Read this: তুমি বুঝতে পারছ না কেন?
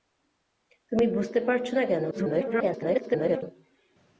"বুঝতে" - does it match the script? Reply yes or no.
yes